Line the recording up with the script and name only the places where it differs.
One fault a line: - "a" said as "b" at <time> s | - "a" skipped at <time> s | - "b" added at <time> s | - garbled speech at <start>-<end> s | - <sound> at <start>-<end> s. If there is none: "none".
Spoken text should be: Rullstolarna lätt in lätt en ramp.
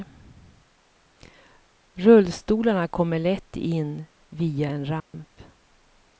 - "kommer" added at 2.9 s
- "lätt" said as "via" at 4.3 s
- dropout at 5.0-5.1 s